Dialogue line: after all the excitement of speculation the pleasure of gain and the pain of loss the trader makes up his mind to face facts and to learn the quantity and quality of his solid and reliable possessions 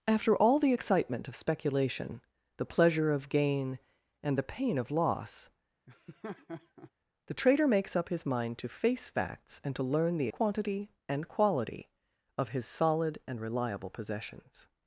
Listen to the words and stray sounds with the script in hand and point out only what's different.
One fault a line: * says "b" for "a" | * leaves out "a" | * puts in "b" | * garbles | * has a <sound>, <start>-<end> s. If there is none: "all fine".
* has a laugh, 5.9-6.9 s